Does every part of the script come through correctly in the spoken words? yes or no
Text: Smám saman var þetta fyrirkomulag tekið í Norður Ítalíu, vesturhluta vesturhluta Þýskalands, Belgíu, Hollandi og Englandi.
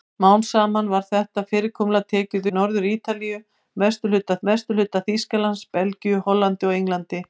yes